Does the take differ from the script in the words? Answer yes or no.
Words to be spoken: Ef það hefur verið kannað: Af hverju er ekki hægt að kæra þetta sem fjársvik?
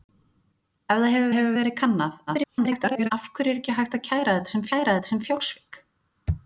yes